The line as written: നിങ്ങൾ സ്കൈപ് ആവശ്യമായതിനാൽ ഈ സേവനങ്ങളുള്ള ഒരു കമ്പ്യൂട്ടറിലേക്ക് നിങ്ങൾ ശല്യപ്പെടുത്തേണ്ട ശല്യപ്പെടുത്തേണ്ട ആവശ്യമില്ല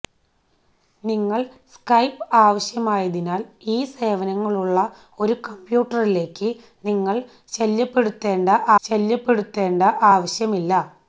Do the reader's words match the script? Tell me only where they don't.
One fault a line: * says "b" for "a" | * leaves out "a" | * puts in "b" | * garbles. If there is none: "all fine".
all fine